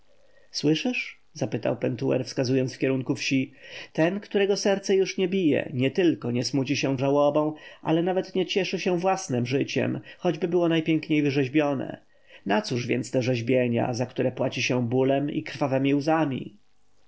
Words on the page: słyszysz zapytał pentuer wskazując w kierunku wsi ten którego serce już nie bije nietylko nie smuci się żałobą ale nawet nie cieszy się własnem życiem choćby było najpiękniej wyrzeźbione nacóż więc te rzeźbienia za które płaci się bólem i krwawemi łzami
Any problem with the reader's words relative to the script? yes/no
no